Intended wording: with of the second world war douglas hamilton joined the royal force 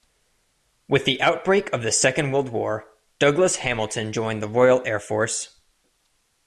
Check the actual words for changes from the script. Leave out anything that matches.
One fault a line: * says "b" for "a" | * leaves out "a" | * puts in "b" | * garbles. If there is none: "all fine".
* puts in "the outbreak"
* puts in "air"